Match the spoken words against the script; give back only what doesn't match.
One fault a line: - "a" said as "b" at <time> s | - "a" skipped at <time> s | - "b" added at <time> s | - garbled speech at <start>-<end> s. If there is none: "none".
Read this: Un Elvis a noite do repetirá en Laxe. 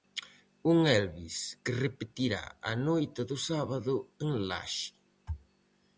- "que repetirá" added at 1.6 s
- "repetirá" said as "sábado" at 3.5 s